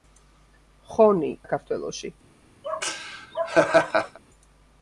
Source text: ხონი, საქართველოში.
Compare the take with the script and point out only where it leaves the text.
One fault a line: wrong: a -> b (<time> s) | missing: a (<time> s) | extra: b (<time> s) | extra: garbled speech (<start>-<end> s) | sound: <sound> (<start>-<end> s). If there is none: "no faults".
sound: laugh (2.6-4.2 s)